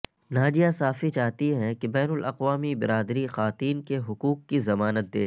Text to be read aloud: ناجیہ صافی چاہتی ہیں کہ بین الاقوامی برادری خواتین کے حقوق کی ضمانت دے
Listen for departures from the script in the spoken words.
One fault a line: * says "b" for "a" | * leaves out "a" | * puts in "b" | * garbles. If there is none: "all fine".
all fine